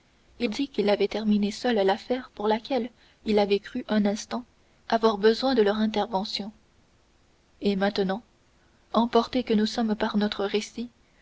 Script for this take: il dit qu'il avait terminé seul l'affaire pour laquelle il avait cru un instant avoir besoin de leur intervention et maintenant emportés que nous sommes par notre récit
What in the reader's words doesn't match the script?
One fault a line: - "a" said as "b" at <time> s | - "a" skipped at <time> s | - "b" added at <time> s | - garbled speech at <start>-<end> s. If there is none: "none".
none